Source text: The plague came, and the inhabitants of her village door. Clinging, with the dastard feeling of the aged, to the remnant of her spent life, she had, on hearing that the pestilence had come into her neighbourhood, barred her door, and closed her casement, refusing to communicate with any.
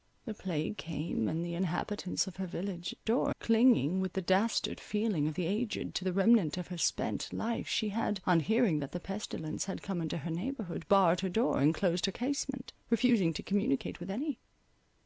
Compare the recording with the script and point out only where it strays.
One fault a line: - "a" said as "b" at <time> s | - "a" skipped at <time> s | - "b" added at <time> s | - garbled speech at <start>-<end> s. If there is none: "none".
none